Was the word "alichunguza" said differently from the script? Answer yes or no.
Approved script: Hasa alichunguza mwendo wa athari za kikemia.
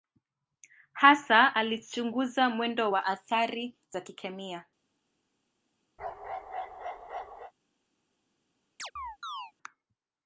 no